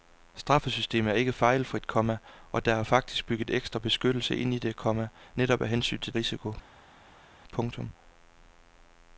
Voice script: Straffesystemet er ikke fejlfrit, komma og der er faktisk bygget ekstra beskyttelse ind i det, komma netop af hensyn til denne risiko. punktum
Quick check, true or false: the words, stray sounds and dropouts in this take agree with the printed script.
false